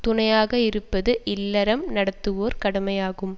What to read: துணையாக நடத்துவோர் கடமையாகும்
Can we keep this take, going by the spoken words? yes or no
no